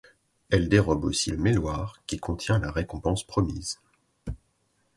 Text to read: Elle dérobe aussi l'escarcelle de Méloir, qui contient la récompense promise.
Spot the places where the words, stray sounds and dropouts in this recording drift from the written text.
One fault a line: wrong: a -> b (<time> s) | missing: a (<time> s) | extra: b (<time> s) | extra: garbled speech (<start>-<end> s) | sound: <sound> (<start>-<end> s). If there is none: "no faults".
missing: l'escarcelle (1.3 s)